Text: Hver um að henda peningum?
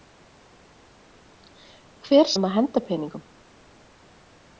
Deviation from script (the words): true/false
false